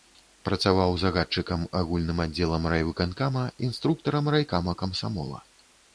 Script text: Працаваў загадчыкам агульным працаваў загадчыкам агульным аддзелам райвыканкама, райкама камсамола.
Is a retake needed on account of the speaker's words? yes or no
yes